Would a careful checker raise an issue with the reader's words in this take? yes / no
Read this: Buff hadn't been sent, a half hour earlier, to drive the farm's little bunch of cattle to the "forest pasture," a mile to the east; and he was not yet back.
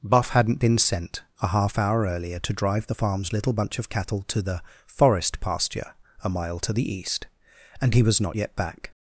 no